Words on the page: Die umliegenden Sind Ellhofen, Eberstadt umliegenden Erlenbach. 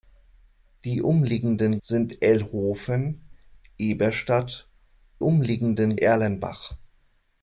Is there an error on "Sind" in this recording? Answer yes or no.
no